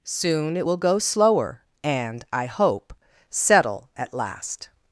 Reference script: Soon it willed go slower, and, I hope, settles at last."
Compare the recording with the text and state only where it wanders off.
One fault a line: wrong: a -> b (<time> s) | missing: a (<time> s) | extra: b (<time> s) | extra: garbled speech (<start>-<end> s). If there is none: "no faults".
wrong: willed -> will (0.6 s)
wrong: settles -> settle (3.3 s)